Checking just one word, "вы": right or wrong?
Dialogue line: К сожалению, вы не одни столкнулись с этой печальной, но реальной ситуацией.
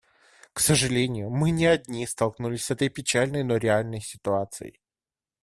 wrong